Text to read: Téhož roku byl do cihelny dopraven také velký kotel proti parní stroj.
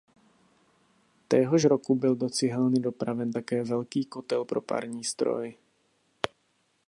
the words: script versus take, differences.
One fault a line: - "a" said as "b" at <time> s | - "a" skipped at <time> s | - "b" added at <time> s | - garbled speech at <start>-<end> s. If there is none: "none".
- "proti" said as "pro" at 4.4 s